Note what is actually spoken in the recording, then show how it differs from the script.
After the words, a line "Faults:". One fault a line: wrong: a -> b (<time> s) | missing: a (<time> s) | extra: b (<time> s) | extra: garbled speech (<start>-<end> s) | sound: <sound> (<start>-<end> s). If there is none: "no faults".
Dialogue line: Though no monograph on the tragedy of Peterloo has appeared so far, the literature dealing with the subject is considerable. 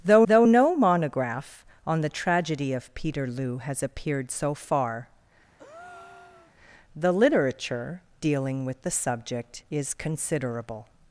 Though though no monograph on the tragedy of Peterloo has appeared so far, the literature dealing with the subject is considerable.
Faults:
extra: though (0.2 s)
sound: breath (5.6-6.5 s)